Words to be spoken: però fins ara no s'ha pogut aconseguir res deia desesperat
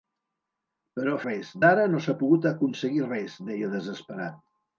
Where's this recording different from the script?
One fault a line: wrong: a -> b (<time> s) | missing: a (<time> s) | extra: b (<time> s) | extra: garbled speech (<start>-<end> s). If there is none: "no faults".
wrong: fins -> res (1.2 s)